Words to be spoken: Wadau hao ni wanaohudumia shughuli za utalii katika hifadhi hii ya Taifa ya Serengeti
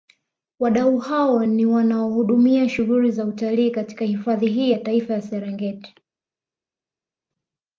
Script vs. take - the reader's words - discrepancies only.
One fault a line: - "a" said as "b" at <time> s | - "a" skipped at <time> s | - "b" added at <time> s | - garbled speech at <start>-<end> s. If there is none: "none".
none